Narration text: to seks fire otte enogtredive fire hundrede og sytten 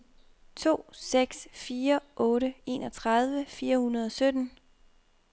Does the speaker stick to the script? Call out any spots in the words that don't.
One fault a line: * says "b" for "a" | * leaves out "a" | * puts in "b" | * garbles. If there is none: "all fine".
all fine